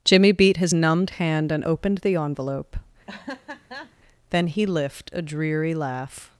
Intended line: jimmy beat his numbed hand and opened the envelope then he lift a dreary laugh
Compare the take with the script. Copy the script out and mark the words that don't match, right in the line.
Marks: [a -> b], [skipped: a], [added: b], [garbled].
jimmy beat his numbed hand and opened the envelope then he lift a dreary laugh